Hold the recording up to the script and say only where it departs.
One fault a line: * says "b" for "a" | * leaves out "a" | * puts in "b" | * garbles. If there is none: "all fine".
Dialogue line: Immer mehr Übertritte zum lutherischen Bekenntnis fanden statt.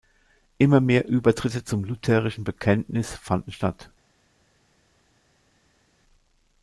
all fine